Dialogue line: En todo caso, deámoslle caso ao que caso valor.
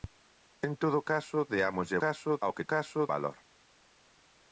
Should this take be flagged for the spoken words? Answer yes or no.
no